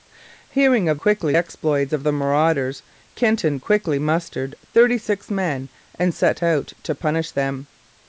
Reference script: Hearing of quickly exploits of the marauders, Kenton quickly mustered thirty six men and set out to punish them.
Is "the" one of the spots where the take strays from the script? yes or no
no